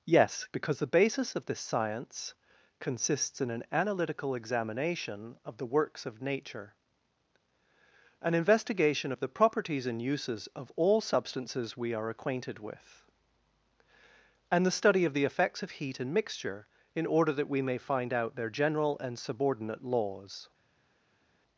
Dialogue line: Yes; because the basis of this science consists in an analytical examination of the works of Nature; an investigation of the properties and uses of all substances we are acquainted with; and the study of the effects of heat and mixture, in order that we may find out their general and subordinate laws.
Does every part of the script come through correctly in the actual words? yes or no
yes